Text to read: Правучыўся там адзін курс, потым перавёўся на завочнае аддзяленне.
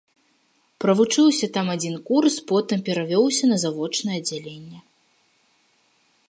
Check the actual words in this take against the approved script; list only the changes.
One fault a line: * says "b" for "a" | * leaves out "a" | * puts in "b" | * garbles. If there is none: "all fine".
all fine